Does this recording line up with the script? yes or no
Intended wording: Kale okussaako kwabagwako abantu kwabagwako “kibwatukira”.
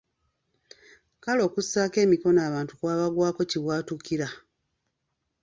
no